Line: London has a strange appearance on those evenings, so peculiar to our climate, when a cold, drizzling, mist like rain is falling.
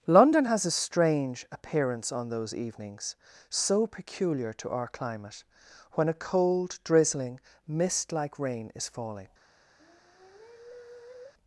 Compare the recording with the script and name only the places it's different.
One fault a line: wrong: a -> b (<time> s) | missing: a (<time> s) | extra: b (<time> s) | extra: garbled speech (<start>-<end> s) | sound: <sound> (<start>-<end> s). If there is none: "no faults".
sound: sigh (9.8-11.3 s)